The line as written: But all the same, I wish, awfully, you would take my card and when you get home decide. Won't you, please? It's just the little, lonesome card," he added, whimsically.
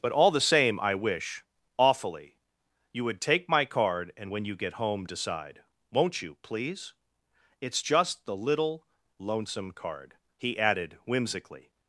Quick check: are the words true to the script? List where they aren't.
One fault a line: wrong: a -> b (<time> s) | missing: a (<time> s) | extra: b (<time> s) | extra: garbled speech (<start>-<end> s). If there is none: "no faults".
no faults